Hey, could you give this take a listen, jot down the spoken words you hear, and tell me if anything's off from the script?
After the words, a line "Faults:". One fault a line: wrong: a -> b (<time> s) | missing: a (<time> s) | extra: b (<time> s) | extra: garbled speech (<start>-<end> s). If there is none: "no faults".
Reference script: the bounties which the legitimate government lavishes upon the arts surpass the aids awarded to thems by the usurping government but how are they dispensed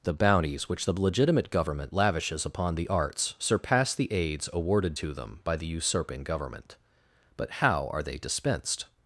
the bounties which the legitimate government lavishes upon the arts surpass the aids awarded to them by the usurping government but how are they dispensed
Faults:
wrong: thems -> them (5.1 s)